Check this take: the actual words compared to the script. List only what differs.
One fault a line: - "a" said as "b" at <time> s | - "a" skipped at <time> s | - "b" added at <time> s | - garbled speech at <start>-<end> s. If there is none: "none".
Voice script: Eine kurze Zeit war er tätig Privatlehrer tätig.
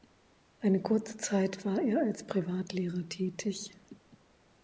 - "tätig" said as "als" at 2.0 s